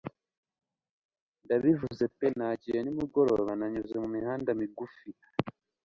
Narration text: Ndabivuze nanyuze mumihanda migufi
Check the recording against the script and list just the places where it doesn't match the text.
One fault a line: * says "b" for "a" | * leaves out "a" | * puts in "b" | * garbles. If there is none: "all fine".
* puts in "pe Nagiye nimugoroba"